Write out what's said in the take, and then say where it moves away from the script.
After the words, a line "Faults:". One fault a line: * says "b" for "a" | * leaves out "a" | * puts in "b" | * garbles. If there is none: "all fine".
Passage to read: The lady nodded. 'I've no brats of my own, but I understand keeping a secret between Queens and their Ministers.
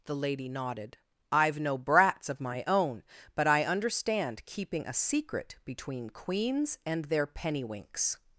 The lady nodded. 'I've no brats of my own, but I understand keeping a secret between Queens and their Pennywinks.
Faults:
* says "Pennywinks" for "Ministers"